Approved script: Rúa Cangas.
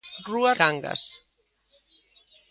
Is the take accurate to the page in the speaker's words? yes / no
yes